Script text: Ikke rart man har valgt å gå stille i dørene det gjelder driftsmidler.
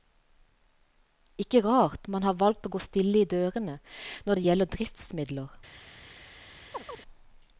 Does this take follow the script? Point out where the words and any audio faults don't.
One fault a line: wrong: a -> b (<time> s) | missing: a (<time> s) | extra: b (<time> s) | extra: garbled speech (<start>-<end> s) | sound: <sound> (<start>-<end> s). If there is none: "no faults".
extra: når (4.3 s)
sound: chirp (6.7-7.0 s)